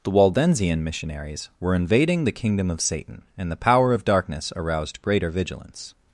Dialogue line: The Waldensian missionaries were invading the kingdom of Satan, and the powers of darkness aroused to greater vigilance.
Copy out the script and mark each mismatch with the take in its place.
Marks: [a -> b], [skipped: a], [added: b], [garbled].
The Waldensian missionaries were invading the kingdom of Satan, and the [powers -> power] of darkness aroused [skipped: to] greater vigilance.